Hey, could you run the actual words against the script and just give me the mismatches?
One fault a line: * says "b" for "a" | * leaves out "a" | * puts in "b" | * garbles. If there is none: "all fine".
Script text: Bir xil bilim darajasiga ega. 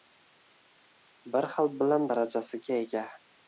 all fine